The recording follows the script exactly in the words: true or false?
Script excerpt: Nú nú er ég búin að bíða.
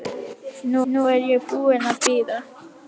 true